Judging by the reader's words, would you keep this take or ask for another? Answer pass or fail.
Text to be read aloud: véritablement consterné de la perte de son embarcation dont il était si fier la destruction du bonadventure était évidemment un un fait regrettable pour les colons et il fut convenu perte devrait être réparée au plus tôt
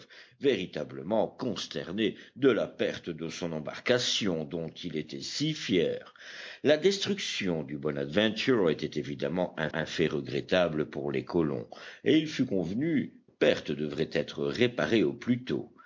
pass